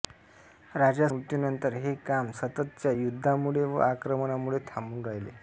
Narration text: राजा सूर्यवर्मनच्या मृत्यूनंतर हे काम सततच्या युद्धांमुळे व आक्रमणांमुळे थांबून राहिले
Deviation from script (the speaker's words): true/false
true